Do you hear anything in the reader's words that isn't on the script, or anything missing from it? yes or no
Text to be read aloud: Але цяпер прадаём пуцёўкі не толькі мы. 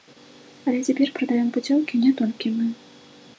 no